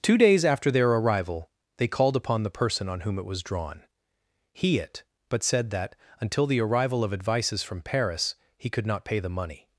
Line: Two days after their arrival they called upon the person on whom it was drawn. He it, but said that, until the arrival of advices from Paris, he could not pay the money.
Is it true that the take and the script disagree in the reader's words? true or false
false